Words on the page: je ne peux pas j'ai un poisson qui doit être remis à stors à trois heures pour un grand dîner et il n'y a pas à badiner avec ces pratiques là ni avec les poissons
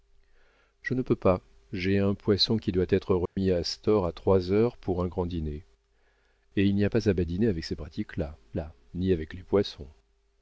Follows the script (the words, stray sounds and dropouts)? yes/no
no